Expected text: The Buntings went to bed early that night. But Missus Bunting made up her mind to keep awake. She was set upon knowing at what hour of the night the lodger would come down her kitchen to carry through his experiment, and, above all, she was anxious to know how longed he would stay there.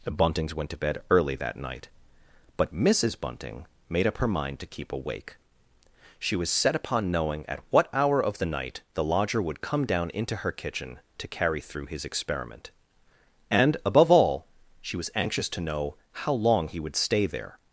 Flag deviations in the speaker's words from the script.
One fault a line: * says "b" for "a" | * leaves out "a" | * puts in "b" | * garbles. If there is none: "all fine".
* puts in "into"
* says "long" for "longed"